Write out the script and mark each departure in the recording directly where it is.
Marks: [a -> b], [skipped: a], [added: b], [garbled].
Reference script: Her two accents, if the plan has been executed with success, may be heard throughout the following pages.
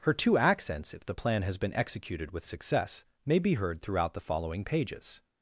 Her two accents, if the plan has been executed with success, may be heard throughout the following pages.